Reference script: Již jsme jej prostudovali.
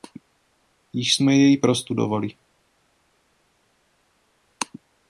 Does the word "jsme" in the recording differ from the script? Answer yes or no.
no